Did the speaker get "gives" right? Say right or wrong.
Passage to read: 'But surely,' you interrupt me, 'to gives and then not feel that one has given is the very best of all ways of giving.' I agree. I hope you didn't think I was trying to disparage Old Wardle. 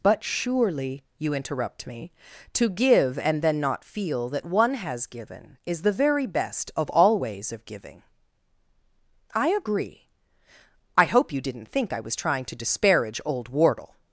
wrong